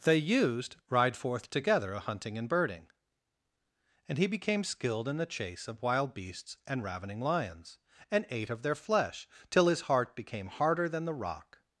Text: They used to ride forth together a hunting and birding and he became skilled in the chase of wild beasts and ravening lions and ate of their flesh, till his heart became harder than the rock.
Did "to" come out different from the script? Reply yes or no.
yes